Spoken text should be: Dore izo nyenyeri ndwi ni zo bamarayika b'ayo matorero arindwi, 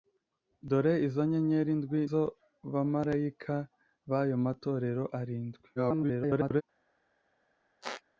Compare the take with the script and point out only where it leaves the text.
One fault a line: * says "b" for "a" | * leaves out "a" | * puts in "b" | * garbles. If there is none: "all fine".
* leaves out "ni"
* garbles